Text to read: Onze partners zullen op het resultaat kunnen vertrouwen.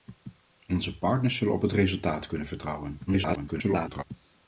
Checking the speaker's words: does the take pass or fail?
fail